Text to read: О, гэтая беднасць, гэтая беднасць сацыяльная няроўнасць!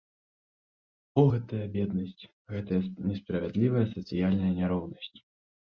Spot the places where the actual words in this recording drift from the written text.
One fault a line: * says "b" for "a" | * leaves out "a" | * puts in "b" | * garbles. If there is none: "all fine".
* says "несправядлівая" for "беднасць"